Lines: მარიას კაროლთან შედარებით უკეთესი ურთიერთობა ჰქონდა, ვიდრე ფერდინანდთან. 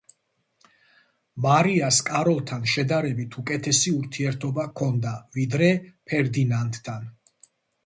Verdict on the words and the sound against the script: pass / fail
pass